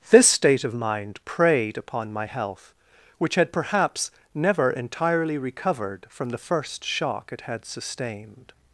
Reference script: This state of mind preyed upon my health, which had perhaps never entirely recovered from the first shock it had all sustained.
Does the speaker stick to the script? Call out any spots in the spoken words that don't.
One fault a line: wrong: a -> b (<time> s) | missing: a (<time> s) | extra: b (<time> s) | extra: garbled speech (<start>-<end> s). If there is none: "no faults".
missing: all (7.6 s)